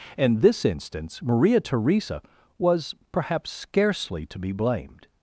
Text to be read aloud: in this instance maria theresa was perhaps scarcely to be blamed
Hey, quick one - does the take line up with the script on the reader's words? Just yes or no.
yes